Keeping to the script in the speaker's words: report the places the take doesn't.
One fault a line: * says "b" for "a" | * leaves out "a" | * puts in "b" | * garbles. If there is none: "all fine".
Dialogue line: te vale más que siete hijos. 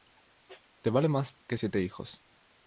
all fine